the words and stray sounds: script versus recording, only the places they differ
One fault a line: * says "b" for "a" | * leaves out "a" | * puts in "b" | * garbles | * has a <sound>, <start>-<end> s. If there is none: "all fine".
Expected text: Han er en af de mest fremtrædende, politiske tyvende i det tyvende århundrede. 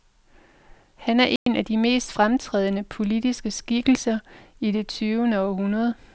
* has a dropout, 1.4-1.5 s
* says "skikkelser" for "tyvende"